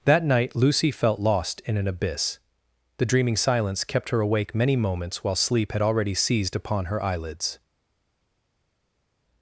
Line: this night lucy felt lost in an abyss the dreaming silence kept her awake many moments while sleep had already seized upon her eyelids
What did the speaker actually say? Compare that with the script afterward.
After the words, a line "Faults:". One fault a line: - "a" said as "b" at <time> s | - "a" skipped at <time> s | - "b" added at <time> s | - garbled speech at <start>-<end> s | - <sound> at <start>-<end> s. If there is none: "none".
that night lucy felt lost in an abyss the dreaming silence kept her awake many moments while sleep had already seized upon her eyelids
Faults:
- "this" said as "that" at 0.1 s